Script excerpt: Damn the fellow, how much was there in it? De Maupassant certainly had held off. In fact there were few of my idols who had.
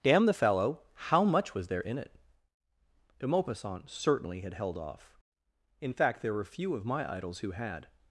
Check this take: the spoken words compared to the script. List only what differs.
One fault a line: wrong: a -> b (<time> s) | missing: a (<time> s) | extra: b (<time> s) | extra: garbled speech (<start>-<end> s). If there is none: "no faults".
no faults